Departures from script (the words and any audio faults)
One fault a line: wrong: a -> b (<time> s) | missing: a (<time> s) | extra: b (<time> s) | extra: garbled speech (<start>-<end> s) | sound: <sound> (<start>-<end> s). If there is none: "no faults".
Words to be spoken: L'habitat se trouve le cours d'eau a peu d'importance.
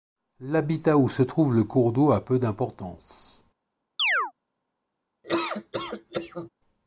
extra: où (1.0 s)
sound: chirp (4.0-4.3 s)
sound: laugh (5.2-6.5 s)